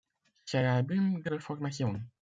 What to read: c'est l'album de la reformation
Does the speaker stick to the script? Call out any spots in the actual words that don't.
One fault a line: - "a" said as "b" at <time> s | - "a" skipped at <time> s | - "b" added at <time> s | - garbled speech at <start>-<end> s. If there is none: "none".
- "la" skipped at 1.3 s